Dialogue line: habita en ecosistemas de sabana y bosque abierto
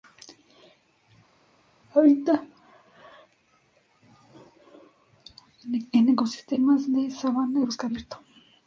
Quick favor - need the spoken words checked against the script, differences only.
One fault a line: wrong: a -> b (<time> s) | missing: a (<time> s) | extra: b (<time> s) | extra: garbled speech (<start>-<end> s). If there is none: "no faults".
no faults